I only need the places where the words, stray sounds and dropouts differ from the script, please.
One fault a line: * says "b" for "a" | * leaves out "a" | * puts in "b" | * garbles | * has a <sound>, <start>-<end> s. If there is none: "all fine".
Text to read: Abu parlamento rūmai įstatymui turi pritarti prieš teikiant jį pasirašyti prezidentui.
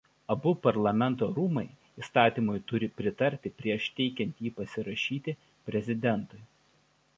all fine